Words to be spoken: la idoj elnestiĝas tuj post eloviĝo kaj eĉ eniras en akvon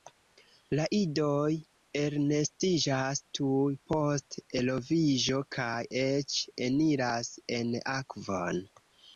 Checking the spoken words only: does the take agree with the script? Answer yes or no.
yes